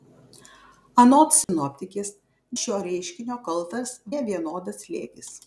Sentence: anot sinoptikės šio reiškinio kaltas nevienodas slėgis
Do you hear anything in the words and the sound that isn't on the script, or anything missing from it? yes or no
yes